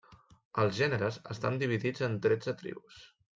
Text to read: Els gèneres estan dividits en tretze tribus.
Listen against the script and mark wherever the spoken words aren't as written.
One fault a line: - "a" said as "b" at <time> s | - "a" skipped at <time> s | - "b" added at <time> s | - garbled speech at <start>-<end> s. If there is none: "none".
none